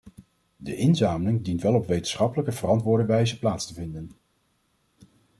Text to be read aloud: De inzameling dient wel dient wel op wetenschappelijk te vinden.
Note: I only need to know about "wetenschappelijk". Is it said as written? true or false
false